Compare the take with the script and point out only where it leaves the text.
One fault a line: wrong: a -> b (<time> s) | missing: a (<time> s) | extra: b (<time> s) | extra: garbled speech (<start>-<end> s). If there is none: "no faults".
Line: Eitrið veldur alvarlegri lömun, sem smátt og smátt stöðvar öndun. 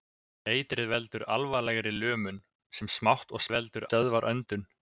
wrong: smátt -> veldur (3.5 s)